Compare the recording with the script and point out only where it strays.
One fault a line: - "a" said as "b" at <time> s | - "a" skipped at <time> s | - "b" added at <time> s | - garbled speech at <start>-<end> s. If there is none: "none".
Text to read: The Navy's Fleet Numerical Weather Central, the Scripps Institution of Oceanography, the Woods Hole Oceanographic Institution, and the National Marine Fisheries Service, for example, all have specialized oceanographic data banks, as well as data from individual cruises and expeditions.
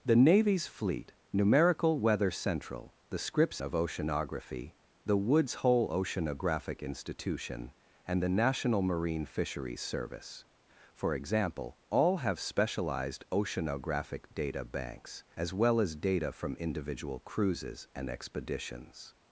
- "Institution" skipped at 3.6 s